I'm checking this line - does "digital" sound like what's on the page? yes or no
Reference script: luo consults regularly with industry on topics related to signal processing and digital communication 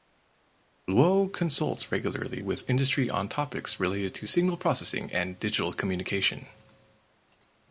yes